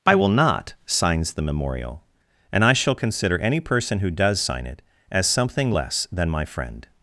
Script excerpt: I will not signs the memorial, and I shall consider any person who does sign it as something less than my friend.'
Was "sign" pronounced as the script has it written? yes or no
yes